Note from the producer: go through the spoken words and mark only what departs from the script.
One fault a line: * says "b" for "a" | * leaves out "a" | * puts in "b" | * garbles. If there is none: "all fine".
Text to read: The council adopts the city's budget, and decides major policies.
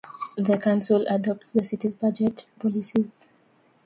* leaves out "and decides major"